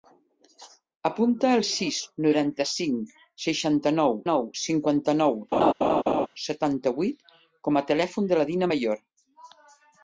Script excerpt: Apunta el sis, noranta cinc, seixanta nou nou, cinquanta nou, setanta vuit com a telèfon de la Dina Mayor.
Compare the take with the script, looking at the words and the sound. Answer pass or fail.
fail